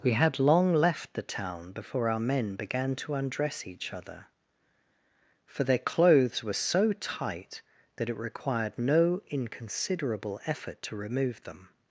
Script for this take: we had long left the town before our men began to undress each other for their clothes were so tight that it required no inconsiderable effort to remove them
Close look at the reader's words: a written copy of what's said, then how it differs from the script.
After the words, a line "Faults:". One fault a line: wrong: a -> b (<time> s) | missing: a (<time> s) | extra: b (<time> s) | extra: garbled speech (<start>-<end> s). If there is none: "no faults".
we had long left the town before our men began to undress each other for their clothes were so tight that it required no inconsiderable effort to remove them
Faults:
no faults